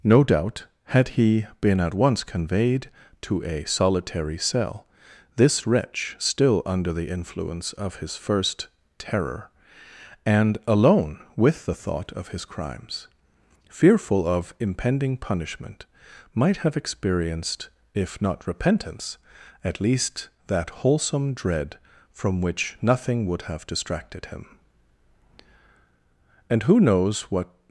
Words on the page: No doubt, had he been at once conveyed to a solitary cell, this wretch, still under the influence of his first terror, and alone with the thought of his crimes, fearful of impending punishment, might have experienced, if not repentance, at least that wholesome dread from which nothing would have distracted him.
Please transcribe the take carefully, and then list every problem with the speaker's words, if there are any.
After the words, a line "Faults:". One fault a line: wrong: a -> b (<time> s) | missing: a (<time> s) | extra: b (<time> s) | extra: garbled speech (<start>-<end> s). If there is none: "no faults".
No doubt, had he been at once conveyed to a solitary cell, this wretch, still under the influence of his first terror, and alone with the thought of his crimes, fearful of impending punishment, might have experienced, if not repentance, at least that wholesome dread from which nothing would have distracted him. And who knows what
Faults:
extra: And who knows what (26.5 s)